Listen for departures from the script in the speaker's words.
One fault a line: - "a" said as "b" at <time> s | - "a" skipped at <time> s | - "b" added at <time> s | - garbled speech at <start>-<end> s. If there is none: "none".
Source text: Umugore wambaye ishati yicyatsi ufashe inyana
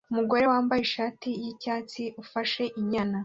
none